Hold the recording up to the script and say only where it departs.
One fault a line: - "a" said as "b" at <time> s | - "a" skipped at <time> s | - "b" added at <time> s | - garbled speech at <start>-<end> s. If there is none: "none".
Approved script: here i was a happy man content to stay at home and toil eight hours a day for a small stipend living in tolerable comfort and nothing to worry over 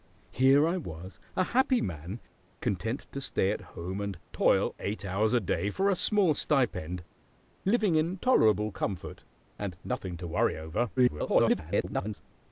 - garbled speech at 11.0-12.2 s